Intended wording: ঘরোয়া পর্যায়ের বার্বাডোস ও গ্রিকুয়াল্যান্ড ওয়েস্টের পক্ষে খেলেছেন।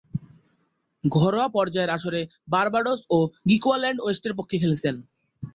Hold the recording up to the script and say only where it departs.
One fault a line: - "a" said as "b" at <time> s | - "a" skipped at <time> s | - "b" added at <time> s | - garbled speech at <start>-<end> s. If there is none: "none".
- "আসরে" added at 1.9 s